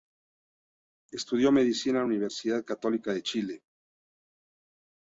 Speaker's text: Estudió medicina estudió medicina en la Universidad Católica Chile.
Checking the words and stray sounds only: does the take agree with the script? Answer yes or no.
no